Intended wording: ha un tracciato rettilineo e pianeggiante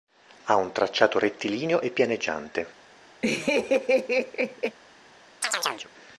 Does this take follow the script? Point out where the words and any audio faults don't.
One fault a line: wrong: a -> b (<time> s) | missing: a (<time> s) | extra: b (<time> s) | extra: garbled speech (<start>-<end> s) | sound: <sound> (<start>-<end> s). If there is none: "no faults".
sound: laugh (3.2-4.8 s)
sound: chirp (5.4-5.9 s)